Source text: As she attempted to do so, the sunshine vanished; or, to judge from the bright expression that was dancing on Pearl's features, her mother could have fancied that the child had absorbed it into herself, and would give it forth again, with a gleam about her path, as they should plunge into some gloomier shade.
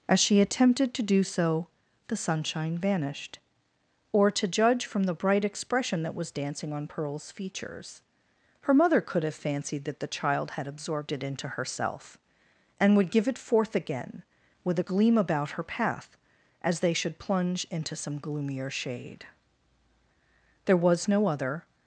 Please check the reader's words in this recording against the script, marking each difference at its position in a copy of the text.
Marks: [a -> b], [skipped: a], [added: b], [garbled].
As she attempted to do so, the sunshine vanished; or, to judge from the bright expression that was dancing on Pearl's features, her mother could have fancied that the child had absorbed it into herself, and would give it forth again, with a gleam about her path, as they should plunge into some gloomier shade. [added: There was no other]